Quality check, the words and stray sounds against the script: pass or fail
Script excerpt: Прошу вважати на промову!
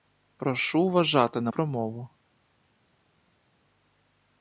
pass